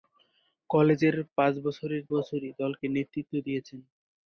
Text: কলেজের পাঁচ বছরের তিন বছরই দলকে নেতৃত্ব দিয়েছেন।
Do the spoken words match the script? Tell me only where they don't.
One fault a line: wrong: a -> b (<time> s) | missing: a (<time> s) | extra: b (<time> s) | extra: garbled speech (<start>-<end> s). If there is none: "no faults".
missing: তিন (2.0 s)